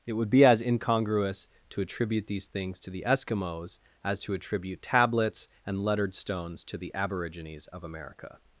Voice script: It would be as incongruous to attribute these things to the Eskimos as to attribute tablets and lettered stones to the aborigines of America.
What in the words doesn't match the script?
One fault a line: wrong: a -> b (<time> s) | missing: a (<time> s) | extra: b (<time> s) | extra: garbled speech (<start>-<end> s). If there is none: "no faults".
no faults